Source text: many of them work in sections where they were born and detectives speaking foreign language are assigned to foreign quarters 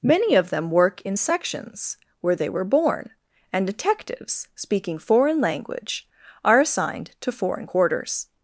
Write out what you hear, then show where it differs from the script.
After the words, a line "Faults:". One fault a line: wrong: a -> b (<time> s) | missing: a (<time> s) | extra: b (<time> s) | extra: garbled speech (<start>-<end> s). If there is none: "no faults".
many of them work in sections where they were born and detectives speaking foreign language are assigned to foreign quarters
Faults:
no faults